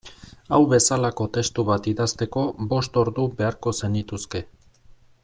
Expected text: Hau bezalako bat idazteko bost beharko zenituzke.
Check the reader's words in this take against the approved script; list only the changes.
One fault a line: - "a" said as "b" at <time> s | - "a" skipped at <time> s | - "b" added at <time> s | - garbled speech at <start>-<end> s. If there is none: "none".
- "testu" added at 1.4 s
- "ordu" added at 3.0 s